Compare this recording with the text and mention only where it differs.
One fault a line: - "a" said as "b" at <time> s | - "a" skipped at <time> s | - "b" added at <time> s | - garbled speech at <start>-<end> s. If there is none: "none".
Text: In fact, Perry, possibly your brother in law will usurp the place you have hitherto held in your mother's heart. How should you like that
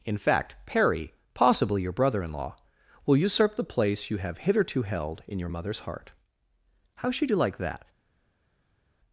none